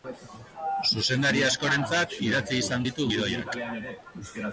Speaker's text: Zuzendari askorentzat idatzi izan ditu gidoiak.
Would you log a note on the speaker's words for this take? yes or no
no